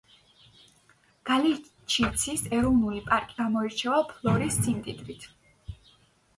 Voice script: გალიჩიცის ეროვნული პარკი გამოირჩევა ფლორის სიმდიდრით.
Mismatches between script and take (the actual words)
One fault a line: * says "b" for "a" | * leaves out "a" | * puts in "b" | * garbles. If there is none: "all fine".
all fine